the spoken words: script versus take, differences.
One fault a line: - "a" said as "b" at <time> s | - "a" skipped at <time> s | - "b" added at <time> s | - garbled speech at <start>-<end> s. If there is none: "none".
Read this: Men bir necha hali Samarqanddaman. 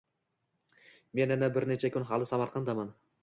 - "yana" added at 1.4 s
- "kun" added at 2.0 s